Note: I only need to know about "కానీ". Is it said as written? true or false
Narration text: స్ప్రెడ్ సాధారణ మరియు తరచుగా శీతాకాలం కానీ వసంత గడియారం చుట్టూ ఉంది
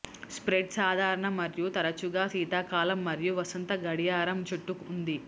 false